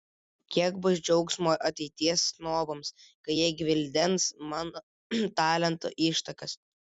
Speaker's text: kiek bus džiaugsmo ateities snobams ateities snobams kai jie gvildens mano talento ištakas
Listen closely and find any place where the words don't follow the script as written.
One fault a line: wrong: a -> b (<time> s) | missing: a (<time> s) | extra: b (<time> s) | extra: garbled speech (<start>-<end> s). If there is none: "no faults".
missing: ateities snobams (2.9 s)